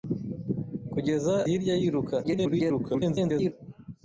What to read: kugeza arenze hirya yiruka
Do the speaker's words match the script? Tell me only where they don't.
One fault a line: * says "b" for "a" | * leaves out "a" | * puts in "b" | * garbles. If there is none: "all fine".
* leaves out "arenze"
* garbles